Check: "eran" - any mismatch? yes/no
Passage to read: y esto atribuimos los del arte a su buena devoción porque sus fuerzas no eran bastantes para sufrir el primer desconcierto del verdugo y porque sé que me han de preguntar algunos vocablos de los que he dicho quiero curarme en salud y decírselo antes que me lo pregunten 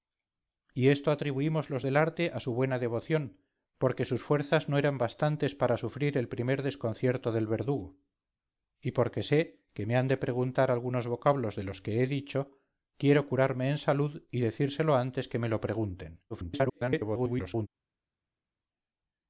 no